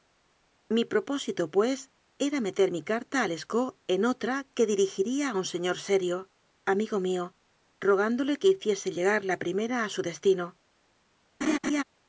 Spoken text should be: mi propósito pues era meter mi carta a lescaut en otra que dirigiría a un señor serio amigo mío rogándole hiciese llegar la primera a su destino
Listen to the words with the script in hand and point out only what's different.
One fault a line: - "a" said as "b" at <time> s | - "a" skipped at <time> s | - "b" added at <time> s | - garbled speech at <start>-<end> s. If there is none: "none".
- "que" added at 8.4 s